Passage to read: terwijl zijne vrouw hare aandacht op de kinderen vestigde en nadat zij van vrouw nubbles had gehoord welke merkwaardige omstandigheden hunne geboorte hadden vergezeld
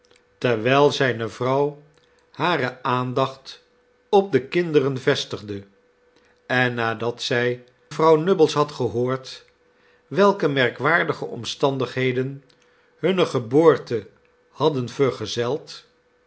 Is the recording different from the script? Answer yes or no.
yes